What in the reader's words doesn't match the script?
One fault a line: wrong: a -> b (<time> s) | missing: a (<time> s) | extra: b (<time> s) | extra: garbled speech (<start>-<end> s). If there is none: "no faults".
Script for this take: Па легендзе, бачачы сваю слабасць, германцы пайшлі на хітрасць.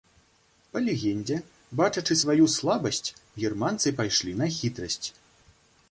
no faults